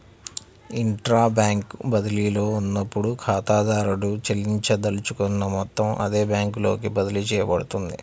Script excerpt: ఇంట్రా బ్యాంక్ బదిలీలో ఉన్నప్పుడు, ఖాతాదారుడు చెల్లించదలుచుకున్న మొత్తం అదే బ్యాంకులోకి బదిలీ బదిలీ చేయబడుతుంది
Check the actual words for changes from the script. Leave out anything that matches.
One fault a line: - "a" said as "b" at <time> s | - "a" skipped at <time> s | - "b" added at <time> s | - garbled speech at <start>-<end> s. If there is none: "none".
- "బదిలీ" skipped at 7.2 s